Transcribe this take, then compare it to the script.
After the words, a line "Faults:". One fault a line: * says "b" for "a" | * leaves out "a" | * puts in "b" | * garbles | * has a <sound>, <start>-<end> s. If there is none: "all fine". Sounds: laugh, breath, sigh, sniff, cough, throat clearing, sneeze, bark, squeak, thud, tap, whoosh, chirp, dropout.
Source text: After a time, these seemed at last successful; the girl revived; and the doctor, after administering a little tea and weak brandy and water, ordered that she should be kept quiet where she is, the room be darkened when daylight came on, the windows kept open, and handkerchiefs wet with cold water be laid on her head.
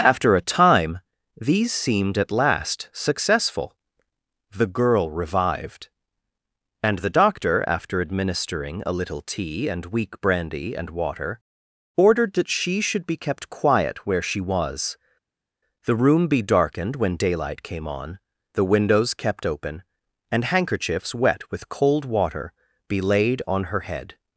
After a time, these seemed at last successful; the girl revived; and the doctor, after administering a little tea and weak brandy and water, ordered that she should be kept quiet where she was, the room be darkened when daylight came on, the windows kept open, and handkerchiefs wet with cold water be laid on her head.
Faults:
* says "was" for "is"